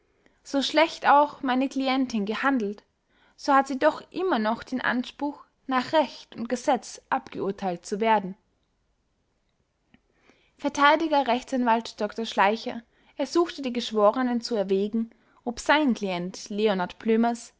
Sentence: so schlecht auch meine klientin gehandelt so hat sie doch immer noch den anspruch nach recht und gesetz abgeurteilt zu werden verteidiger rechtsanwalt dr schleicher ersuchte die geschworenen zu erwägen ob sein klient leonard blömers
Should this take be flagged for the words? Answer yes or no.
no